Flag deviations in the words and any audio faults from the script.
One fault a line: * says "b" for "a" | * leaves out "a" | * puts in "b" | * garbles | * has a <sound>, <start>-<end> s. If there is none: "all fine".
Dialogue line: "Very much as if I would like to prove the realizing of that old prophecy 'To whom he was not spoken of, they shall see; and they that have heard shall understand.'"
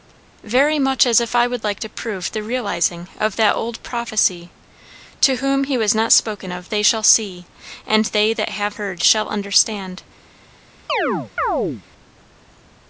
* has a chirp, 10.9-11.8 s